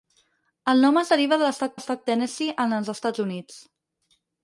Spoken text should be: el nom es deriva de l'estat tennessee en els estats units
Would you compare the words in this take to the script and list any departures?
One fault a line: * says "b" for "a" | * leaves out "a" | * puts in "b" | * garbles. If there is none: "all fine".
* puts in "l'estat"